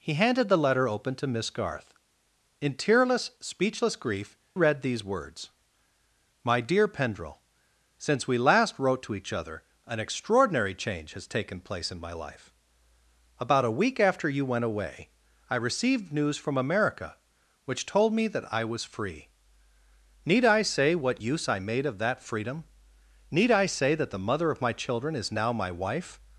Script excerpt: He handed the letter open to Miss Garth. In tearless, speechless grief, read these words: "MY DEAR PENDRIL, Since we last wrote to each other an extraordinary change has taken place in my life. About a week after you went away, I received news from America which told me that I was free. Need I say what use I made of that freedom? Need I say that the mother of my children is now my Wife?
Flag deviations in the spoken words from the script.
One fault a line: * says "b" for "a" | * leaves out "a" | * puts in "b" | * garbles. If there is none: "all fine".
all fine